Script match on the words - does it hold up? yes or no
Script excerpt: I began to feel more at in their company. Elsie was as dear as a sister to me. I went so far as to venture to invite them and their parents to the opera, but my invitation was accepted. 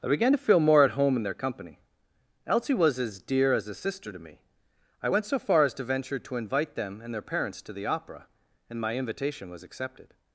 no